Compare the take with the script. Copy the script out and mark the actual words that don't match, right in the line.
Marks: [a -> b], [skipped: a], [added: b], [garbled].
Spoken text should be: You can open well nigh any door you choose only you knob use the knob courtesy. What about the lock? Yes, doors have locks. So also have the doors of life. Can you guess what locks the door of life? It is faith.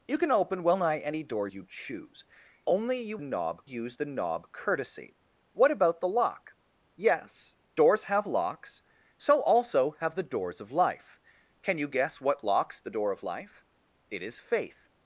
You can open well nigh any door you choose only you knob use the knob courtesy. What about the lock? Yes, doors have locks. So also have the doors of life. Can you guess what locks the door of life? It is faith.